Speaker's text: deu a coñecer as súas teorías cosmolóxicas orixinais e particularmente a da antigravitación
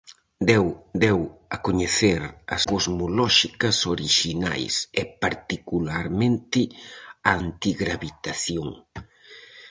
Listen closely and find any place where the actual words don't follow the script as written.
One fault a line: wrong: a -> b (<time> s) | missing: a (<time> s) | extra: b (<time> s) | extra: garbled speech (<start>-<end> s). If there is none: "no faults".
extra: deu (1.0 s)
missing: súas teorías (2.6 s)
missing: da (7.3 s)